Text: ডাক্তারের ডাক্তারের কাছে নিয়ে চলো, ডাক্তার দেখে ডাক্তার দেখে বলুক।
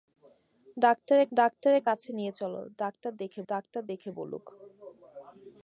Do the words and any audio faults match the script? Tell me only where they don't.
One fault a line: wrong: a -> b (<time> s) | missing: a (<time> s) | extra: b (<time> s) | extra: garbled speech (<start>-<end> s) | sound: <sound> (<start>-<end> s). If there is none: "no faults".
no faults